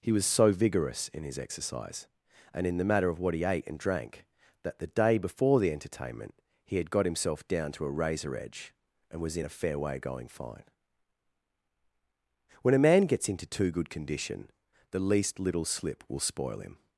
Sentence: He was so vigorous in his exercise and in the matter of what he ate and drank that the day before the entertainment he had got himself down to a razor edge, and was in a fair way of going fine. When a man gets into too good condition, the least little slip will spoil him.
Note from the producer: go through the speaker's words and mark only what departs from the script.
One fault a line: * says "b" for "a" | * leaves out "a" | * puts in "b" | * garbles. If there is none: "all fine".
* leaves out "of"